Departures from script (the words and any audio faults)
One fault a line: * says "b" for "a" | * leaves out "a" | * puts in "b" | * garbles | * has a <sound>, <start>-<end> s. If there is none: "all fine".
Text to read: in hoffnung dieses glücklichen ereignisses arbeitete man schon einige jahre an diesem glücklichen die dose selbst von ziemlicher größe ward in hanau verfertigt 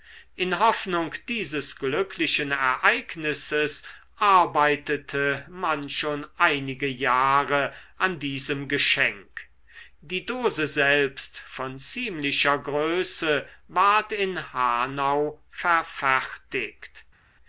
* says "geschenk" for "glücklichen"